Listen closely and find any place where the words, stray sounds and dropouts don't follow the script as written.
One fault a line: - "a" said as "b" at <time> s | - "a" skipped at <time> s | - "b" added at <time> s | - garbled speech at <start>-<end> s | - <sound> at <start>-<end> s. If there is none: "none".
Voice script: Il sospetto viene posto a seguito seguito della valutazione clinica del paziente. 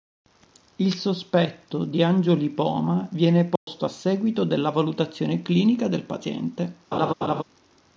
- "di angiolipoma" added at 1.8 s
- dropout at 3.6-3.7 s
- "seguito" skipped at 4.4 s
- laugh at 6.9-7.4 s